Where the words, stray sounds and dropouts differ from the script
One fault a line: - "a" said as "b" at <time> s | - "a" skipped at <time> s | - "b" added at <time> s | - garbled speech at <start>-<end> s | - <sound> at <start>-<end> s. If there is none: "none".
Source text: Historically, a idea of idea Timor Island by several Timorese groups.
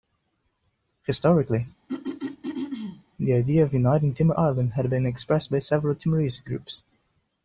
- throat clearing at 1.9-3.0 s
- "a" said as "the" at 3.2 s
- "idea" said as "uniting" at 3.7 s
- "had been expressed" added at 4.7 s